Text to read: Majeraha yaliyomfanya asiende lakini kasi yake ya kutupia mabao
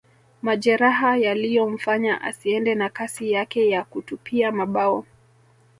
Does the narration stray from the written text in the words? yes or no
yes